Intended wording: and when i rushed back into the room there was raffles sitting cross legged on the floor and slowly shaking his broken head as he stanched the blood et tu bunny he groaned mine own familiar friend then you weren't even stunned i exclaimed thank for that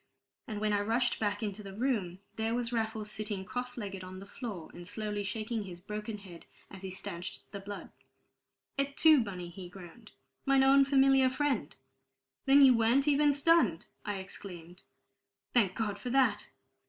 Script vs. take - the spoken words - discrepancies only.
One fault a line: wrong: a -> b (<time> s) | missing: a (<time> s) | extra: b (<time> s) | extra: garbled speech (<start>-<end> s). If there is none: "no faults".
extra: god (15.7 s)